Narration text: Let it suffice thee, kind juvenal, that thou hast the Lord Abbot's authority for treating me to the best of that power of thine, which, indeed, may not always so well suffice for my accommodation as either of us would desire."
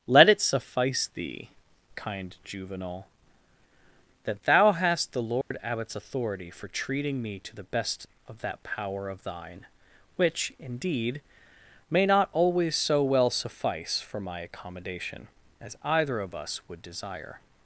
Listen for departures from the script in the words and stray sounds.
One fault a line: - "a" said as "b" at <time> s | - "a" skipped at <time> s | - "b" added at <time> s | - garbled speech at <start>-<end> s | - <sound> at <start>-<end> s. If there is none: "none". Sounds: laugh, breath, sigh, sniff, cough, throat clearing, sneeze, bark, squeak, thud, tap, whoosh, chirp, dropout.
- dropout at 5.4-5.5 s